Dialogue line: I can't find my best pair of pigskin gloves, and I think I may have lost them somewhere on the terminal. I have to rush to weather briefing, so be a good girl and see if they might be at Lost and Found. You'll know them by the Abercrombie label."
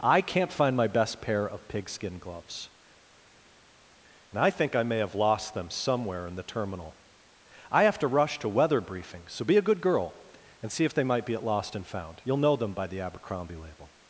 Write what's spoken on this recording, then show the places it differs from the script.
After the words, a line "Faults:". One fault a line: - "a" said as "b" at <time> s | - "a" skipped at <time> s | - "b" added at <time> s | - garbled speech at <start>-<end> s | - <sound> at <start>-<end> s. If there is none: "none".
I can't find my best pair of pigskin gloves, and I think I may have lost them somewhere in the terminal. I have to rush to weather briefing, so be a good girl and see if they might be at Lost and Found. You'll know them by the Abercrombie label."
Faults:
- "on" said as "in" at 6.2 s